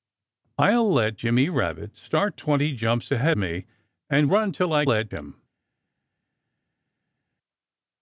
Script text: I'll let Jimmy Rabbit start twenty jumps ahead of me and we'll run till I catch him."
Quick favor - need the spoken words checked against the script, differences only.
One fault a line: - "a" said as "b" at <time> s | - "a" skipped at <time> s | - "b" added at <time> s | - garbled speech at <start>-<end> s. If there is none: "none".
- "of" skipped at 3.3 s
- "we'll" skipped at 4.3 s
- "catch" said as "let" at 4.8 s